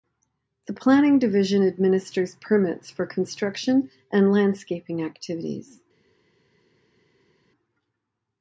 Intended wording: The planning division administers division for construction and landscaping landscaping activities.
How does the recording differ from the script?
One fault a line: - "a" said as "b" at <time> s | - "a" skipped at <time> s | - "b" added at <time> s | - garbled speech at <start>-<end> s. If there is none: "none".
- "division" said as "permits" at 2.4 s
- "landscaping" skipped at 5.0 s